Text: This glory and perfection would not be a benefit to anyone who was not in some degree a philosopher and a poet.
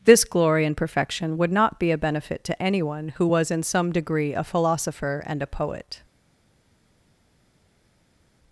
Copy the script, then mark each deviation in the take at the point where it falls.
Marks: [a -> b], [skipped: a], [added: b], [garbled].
This glory and perfection would not be a benefit to anyone who was [skipped: not] in some degree a philosopher and a poet.